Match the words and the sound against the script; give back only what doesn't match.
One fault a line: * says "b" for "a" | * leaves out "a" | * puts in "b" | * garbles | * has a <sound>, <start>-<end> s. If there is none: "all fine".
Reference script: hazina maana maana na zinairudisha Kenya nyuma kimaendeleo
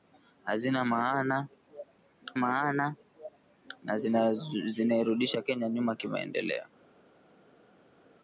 all fine